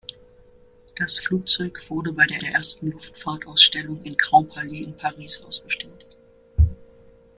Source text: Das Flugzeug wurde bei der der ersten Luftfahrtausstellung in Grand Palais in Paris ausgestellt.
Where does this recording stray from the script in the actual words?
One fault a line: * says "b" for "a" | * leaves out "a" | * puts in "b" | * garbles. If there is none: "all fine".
all fine